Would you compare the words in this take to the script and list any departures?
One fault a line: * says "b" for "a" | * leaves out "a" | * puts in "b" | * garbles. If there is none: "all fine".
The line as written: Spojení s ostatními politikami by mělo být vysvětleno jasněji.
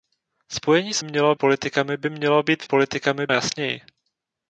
* says "mělo" for "ostatními"
* says "politikami" for "vysvětleno"